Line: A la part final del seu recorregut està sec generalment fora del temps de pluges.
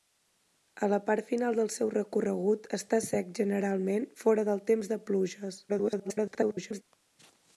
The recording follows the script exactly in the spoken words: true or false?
false